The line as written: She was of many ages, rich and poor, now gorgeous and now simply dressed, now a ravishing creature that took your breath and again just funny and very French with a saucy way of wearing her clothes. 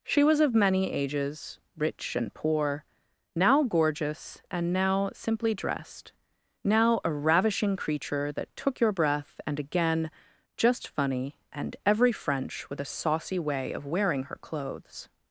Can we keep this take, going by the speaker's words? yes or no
no